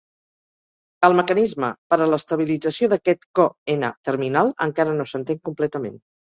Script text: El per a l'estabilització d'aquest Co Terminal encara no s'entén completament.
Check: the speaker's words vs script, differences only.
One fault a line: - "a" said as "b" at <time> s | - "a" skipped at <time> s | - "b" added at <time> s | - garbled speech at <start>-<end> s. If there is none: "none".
- "mecanisme" added at 1.2 s
- "N" added at 3.8 s